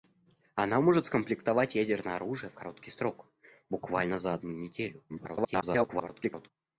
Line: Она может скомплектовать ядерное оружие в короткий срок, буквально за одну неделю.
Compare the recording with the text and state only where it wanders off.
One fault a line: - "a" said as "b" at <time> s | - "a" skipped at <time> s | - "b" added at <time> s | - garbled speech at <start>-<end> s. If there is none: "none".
- garbled speech at 5.1-6.5 s